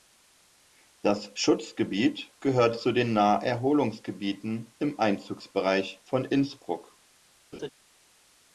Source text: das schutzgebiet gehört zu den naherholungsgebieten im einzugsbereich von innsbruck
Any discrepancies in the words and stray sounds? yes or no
yes